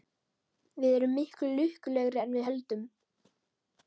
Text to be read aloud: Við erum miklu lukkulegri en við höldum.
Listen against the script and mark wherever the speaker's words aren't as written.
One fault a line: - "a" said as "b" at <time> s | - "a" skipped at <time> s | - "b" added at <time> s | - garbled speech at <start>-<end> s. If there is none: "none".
none